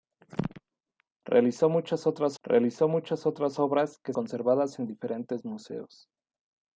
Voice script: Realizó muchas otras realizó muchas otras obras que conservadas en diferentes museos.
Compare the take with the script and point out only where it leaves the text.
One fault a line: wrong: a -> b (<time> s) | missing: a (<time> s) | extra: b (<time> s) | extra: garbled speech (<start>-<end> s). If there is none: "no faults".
no faults